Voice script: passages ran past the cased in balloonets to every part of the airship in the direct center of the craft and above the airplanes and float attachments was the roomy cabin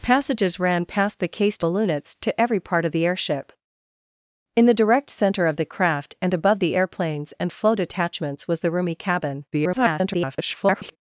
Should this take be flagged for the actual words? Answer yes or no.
yes